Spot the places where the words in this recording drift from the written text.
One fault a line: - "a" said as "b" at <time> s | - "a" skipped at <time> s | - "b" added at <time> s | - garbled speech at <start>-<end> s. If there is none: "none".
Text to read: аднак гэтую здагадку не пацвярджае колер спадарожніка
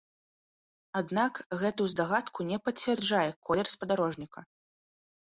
none